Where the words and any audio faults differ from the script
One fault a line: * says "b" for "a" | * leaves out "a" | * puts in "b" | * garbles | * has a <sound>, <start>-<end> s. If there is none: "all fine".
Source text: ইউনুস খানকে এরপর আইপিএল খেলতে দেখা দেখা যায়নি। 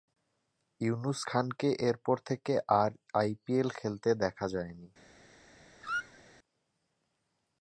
* puts in "থেকে আর"
* leaves out "দেখা"
* has a squeak, 5.8-6.2 s